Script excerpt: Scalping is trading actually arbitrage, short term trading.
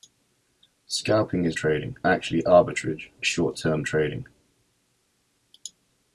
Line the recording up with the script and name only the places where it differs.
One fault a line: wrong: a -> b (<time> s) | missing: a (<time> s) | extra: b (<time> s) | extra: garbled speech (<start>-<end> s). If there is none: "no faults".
no faults